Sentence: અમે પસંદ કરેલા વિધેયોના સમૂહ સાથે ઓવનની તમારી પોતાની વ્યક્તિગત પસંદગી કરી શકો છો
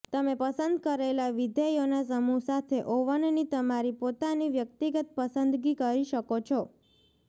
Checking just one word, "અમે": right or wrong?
wrong